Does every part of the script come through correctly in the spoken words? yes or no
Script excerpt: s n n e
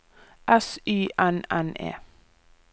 no